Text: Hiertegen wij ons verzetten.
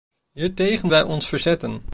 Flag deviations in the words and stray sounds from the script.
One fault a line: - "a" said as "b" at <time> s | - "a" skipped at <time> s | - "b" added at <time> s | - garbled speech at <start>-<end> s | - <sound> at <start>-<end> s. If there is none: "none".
none